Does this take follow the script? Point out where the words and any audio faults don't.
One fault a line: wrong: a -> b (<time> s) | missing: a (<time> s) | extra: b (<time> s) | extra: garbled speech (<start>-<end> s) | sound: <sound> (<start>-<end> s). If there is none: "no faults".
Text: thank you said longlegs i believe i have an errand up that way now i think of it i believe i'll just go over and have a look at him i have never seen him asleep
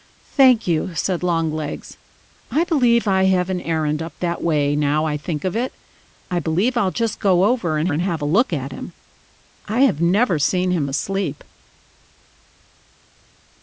extra: and (7.9 s)